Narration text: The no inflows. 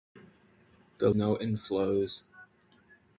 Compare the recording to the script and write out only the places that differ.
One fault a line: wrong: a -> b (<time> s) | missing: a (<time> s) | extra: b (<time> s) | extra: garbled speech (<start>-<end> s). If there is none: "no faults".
no faults